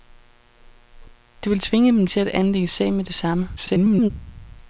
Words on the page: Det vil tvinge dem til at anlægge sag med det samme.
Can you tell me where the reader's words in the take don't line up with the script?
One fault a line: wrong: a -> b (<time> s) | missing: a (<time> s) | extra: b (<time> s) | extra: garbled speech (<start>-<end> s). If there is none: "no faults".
extra: garbled speech (3.6-4.1 s)